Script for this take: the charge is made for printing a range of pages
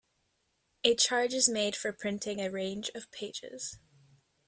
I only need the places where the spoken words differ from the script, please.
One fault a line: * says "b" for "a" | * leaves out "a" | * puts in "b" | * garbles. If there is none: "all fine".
* says "a" for "the"